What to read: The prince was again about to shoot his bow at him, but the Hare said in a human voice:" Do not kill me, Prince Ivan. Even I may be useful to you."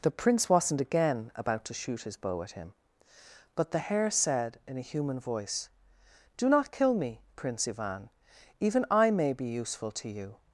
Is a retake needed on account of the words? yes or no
yes